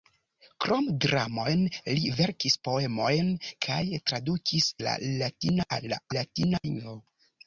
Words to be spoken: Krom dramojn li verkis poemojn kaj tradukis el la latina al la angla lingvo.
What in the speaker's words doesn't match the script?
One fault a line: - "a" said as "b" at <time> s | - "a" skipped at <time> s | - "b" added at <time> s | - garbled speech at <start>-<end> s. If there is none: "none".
- "el" skipped at 4.7 s
- "angla" said as "latina" at 6.2 s